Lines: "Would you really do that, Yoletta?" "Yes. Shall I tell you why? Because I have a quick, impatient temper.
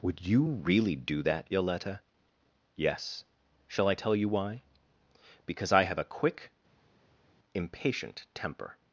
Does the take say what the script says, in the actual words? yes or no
yes